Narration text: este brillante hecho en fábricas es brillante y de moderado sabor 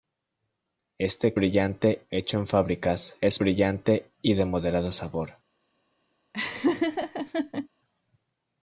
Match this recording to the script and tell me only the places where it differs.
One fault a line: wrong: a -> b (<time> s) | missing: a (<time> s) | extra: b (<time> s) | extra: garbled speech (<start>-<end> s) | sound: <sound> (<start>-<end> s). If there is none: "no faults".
sound: laugh (6.3-7.7 s)